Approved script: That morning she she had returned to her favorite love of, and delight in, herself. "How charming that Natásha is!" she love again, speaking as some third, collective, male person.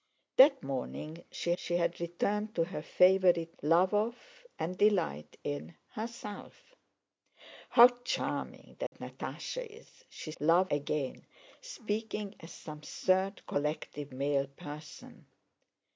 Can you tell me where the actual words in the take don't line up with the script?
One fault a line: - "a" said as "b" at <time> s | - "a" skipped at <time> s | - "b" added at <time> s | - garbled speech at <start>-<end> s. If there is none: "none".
none